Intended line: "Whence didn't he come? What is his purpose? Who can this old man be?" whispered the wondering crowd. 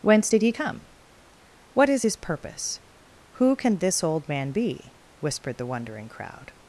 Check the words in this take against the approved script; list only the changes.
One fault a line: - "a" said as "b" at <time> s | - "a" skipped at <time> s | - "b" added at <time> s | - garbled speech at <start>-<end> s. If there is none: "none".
- "didn't" said as "did" at 0.3 s